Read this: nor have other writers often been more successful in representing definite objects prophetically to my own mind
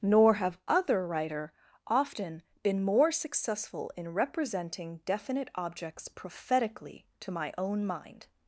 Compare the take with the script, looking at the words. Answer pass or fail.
fail